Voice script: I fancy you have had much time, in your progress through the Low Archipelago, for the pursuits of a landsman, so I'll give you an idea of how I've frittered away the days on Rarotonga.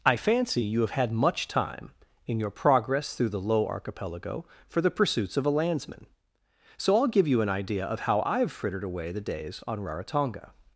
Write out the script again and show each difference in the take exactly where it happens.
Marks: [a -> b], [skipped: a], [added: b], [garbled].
I fancy you have had much time, in your progress through the Low Archipelago, for the pursuits of a landsman, so I'll give you an idea of how I've frittered away the days on Rarotonga.